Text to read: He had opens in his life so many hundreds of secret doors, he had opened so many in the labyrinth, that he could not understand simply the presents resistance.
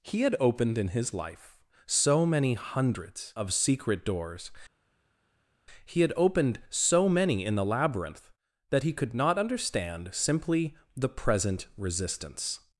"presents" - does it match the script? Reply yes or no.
no